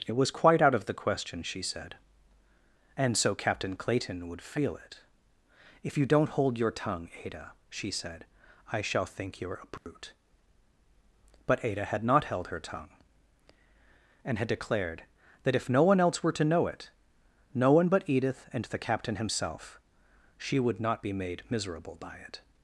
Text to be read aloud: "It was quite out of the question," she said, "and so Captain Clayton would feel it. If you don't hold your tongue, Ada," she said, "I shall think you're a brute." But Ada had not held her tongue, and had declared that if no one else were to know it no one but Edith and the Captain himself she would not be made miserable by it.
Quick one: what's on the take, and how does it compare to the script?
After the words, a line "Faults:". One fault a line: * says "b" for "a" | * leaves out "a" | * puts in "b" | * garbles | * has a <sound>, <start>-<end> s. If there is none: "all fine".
"It was quite out of the question," she said, "and so Captain Clayton would feel it. If you don't hold your tongue, Ada," she said, "I shall think you're a brute." But Ada had not held her tongue, and had declared that if no one else were to know it no one but Edith and the Captain himself she would not be made miserable by it.
Faults:
* has a dropout, 9.8-9.9 s